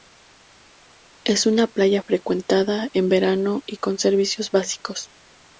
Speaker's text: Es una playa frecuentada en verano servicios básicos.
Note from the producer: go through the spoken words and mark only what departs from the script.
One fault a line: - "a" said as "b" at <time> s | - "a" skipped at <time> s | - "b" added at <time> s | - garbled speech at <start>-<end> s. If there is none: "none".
- "y con" added at 3.7 s